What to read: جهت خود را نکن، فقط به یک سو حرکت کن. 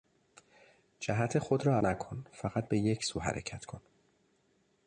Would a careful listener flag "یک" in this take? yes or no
no